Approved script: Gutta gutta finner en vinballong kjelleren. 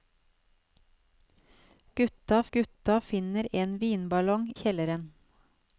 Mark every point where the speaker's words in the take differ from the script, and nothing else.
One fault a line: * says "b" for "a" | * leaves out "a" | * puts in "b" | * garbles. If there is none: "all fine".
all fine